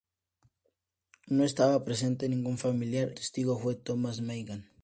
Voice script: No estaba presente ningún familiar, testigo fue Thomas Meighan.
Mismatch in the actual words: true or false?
false